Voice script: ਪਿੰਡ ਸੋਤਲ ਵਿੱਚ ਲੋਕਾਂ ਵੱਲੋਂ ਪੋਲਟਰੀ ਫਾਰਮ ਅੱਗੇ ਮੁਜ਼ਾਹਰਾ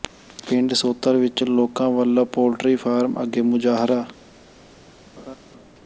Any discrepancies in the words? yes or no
no